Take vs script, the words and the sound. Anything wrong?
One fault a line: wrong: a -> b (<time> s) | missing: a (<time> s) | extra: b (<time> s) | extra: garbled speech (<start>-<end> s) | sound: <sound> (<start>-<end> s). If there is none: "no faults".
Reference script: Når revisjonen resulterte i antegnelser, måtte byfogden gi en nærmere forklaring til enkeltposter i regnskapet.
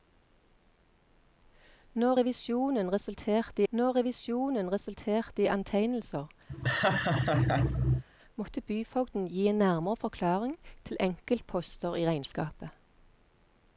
extra: når revisjonen resulterte (3.7 s)
sound: laugh (6.5-8.0 s)